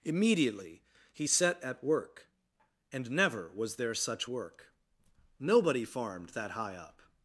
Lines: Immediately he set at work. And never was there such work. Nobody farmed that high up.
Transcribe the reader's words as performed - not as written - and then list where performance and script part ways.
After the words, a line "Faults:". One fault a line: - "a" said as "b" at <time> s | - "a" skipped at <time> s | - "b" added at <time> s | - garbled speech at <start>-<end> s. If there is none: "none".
Immediately he set at work. And never was there such work. Nobody farmed that high up.
Faults:
none